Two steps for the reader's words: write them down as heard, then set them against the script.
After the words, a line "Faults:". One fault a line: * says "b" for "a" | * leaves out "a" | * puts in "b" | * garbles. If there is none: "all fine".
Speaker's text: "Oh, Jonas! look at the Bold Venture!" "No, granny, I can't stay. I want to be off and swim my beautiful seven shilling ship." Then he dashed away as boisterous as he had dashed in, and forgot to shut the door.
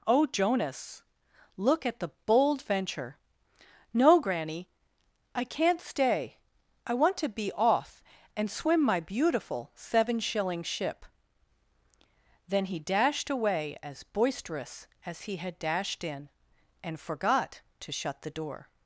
"Oh, Jonas! look at the Bold Venture!" "No, granny, I can't stay. I want to be off and swim my beautiful seven shilling ship." Then he dashed away as boisterous as he had dashed in, and forgot to shut the door.
Faults:
all fine